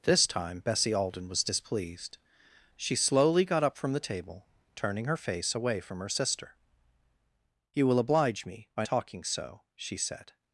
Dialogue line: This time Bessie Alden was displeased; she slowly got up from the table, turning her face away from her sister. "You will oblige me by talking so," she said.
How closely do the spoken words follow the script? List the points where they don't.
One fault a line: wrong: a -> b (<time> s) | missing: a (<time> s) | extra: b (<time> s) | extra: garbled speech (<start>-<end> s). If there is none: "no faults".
no faults